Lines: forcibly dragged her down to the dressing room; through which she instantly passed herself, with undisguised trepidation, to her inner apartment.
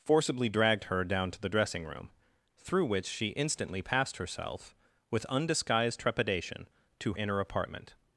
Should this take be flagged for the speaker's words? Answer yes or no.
yes